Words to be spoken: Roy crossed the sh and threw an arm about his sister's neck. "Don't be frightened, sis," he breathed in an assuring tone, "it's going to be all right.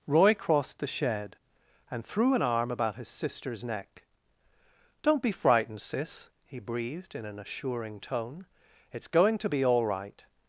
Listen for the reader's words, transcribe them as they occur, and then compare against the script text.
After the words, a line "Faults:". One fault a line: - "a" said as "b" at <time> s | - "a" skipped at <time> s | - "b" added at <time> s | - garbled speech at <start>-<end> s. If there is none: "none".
Roy crossed the shed and threw an arm about his sister's neck. "Don't be frightened, sis," he breathed in an assuring tone, "it's going to be all right.
Faults:
- "sh" said as "shed" at 0.9 s